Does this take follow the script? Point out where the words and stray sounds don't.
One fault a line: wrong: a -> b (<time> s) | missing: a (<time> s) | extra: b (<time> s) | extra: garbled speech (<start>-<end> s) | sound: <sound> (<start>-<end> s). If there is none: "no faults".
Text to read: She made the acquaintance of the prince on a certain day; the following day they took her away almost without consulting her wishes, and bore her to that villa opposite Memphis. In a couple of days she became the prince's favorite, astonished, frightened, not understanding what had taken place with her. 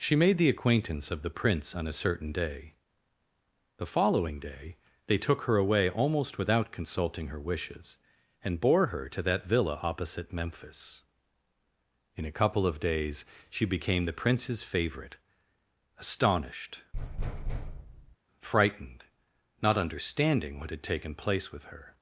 sound: thud (16.9-18.2 s)